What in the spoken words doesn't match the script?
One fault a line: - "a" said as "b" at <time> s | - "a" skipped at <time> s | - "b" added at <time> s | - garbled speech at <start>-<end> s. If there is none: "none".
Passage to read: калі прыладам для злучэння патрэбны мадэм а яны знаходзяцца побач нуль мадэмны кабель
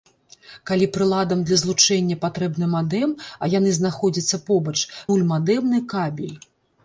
none